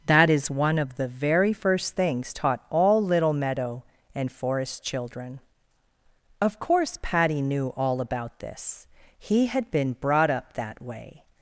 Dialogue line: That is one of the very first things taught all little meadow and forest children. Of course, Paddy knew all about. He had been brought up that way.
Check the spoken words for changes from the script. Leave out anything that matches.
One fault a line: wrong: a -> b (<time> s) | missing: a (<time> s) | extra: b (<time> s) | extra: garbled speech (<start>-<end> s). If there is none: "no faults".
extra: this (8.4 s)